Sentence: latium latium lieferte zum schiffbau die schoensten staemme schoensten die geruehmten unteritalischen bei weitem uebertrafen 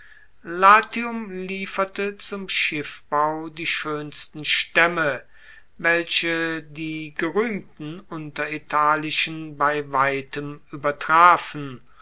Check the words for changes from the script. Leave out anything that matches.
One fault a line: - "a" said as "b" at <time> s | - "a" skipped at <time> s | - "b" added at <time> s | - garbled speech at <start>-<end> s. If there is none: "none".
- "latium" skipped at 1.3 s
- "schoensten" said as "welche" at 5.8 s